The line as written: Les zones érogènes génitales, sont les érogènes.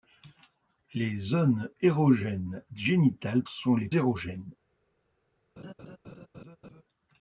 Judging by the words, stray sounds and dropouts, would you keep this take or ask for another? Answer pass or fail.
fail